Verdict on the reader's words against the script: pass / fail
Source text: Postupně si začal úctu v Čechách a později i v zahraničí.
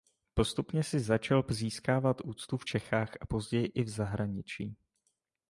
fail